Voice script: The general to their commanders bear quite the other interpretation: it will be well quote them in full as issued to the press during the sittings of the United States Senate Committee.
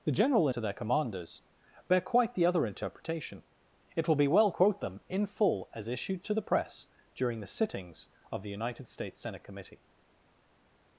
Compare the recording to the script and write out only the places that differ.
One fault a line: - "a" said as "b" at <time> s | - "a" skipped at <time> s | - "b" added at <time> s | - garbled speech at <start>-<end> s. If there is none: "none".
none